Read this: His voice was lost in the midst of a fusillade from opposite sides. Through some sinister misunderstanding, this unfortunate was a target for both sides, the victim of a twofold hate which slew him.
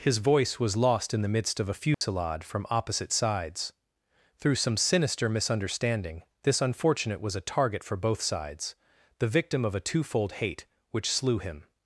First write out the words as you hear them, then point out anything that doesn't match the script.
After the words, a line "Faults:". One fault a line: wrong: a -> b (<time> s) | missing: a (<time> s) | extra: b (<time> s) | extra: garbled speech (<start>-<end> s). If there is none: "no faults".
His voice was lost in the midst of a fusillade from opposite sides. Through some sinister misunderstanding, this unfortunate was a target for both sides, the victim of a twofold hate which slew him.
Faults:
no faults